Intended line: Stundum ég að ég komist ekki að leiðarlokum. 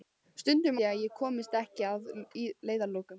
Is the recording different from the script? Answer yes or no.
no